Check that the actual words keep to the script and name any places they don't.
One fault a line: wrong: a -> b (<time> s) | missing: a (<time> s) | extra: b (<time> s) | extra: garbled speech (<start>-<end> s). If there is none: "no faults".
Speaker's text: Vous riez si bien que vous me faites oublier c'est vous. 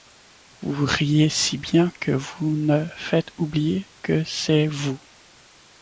extra: que (4.0 s)